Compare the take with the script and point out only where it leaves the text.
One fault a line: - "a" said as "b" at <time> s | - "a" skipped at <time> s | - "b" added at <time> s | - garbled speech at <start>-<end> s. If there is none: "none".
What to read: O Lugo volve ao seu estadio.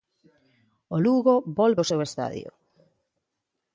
none